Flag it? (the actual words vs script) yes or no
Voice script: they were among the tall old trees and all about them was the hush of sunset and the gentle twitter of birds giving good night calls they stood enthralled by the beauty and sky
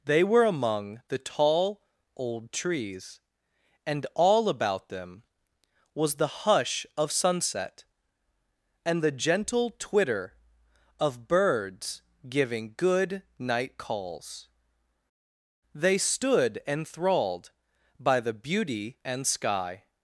no